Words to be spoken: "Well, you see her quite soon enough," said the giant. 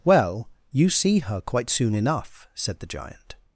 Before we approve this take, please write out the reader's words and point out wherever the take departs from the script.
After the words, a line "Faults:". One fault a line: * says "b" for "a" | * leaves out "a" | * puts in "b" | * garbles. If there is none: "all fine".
"Well, you see her quite soon enough," said the giant.
Faults:
all fine